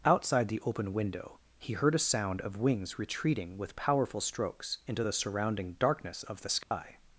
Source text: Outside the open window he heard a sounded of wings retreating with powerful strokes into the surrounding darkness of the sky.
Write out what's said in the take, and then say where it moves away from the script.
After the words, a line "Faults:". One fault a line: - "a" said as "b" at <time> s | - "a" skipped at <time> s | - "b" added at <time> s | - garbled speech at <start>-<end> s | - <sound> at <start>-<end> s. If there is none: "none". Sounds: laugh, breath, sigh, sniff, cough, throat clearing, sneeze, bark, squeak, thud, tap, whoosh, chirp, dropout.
Outside the open window he heard a sound of wings retreating with powerful strokes into the surrounding darkness of the sky.
Faults:
- "sounded" said as "sound" at 2.0 s
- dropout at 6.6-6.7 s